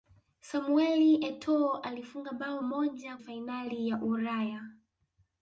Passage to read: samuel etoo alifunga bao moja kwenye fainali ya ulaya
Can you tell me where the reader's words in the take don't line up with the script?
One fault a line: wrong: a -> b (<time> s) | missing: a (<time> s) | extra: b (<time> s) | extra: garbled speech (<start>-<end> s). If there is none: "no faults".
missing: kwenye (3.2 s)